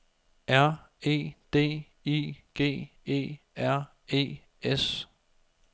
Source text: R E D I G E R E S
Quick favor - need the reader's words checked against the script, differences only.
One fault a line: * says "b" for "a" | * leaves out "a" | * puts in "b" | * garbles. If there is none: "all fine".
all fine